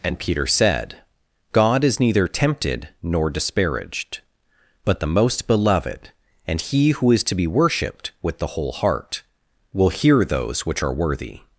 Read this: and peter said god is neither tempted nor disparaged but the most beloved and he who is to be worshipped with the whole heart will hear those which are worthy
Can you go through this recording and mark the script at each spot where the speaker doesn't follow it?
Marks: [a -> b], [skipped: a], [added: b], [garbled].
and peter said god is neither tempted nor disparaged but the most beloved and he who is to be worshipped with the whole heart will hear those which are worthy